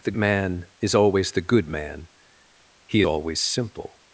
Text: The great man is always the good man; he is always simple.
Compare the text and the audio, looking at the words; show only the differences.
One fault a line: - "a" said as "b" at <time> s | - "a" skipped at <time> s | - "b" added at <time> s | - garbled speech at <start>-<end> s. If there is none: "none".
- "great" skipped at 0.1 s
- "is" skipped at 3.0 s